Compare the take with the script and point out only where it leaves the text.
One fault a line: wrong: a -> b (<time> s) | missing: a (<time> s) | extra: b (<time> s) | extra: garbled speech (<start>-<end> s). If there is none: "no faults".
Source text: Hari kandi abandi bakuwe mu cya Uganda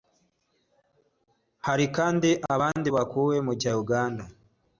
no faults